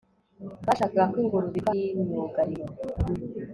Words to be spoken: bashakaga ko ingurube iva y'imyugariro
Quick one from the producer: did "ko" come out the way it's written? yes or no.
yes